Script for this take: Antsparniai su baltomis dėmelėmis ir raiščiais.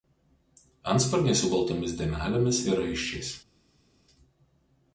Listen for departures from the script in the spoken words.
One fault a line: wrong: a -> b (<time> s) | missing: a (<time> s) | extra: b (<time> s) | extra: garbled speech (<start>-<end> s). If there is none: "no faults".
no faults